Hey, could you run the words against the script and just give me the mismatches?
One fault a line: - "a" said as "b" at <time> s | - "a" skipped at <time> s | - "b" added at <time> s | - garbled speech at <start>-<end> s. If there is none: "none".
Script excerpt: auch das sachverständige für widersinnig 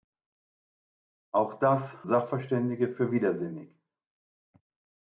none